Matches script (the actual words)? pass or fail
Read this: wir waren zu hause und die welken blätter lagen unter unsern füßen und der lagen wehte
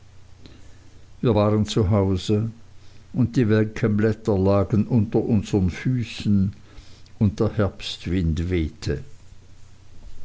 fail